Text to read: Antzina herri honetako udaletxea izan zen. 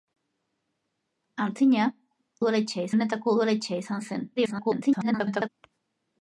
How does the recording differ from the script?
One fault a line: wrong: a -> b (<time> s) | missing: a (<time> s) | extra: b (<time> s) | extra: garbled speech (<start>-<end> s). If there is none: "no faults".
wrong: herri -> udaletxea (2.4 s)
extra: garbled speech (4.4-5.5 s)